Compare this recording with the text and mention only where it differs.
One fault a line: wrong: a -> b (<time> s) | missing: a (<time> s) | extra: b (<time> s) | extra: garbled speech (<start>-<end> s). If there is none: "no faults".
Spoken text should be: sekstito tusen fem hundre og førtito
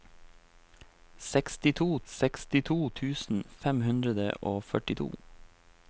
extra: sekstito (2.1 s)